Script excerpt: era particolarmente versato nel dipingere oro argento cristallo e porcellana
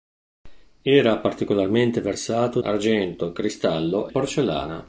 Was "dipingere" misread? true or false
true